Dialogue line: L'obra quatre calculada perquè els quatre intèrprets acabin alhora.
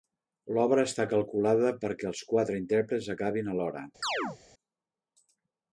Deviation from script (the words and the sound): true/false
true